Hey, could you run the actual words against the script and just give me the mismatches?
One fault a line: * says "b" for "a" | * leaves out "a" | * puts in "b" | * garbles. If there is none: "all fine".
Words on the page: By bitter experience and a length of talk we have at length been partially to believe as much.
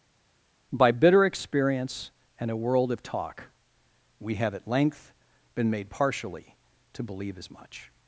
* says "world" for "length"
* puts in "made"